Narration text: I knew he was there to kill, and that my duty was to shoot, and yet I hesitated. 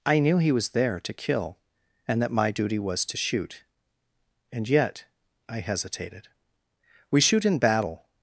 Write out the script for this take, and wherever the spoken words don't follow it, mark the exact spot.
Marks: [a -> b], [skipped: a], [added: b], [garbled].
I knew he was there to kill, and that my duty was to shoot, and yet I hesitated. [added: We shoot in battle]